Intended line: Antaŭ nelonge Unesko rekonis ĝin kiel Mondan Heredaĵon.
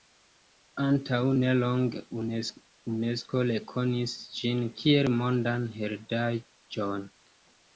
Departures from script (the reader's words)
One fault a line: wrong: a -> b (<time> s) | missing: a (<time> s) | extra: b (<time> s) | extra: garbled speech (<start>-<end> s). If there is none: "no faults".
no faults